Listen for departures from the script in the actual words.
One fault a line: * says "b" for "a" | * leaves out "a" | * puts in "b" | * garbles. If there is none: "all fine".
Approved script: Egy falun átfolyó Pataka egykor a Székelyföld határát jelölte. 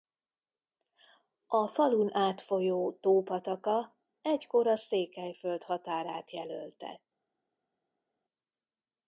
* says "A" for "Egy"
* puts in "Tó"